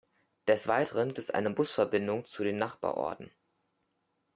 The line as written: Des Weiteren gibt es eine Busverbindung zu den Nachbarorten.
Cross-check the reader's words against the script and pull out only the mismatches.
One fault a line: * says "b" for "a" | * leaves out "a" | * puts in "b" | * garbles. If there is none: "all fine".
* leaves out "gibt"